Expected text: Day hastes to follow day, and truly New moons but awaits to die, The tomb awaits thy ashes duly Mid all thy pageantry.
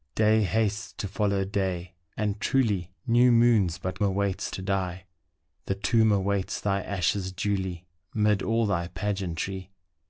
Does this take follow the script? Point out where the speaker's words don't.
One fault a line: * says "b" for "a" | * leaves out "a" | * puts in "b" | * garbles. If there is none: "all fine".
all fine